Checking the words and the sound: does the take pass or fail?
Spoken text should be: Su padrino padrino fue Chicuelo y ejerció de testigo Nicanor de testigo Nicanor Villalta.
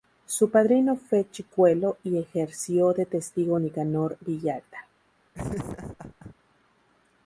fail